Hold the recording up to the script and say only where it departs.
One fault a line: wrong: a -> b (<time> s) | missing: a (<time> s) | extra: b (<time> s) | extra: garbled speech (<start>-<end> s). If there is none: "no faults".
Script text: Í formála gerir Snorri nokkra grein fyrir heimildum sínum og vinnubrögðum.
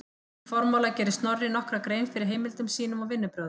no faults